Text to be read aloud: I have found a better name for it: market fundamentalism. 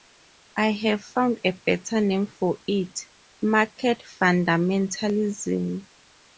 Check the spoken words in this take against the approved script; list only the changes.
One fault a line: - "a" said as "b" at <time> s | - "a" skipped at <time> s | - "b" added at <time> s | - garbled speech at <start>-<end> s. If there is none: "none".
none